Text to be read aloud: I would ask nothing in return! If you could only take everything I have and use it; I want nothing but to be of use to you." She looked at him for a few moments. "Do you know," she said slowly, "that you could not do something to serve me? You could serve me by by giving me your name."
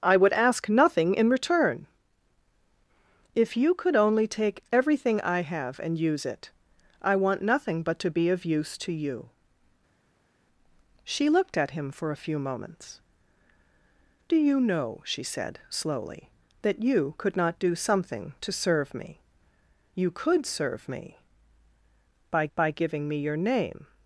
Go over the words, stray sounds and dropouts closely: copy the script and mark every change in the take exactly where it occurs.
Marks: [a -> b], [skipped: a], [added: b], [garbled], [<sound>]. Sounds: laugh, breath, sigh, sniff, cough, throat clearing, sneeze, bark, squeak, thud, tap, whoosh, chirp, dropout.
I would ask nothing in return! If you could only take everything I have and use it; I want nothing but to be of use to you." She looked at him for a few moments. "Do you know," she said slowly, "that you could not do something to serve me? You could serve me by by giving me your name."